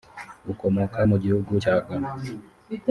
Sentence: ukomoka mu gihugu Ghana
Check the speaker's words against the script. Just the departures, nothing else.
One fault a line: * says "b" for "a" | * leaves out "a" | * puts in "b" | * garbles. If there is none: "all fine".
* puts in "cya"